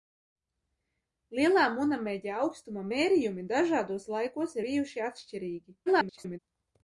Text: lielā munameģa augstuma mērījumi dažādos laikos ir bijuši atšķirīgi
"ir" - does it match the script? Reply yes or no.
no